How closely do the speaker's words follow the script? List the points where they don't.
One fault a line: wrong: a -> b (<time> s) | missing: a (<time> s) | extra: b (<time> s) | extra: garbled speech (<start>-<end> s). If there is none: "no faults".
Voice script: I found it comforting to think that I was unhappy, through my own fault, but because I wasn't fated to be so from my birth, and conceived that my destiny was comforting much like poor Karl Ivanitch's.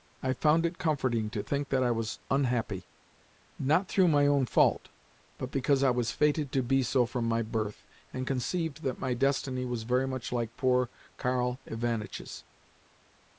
extra: not (3.6 s)
wrong: wasn't -> was (5.9 s)
wrong: comforting -> very (9.8 s)